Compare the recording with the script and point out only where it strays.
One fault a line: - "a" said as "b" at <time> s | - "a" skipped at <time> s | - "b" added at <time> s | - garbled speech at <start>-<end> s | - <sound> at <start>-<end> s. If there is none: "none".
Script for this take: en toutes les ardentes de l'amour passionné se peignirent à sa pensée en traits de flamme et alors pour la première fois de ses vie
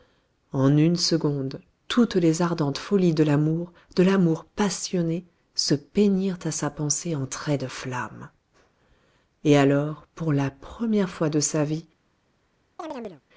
- "une seconde" added at 0.8 s
- "folies" added at 2.8 s
- "de l'amour" added at 4.0 s
- "ses" said as "sa" at 11.4 s
- chirp at 12.8-13.2 s